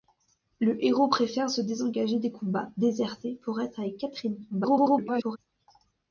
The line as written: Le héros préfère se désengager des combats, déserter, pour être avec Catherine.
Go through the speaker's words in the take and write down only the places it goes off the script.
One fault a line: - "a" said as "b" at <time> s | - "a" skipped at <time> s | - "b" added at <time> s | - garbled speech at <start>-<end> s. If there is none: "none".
- garbled speech at 4.5-5.4 s